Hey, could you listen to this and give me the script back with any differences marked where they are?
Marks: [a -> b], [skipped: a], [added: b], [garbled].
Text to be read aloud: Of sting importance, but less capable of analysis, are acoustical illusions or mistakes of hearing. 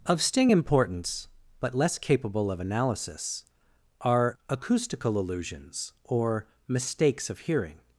Of sting importance, but less capable of analysis, are acoustical illusions or mistakes of hearing.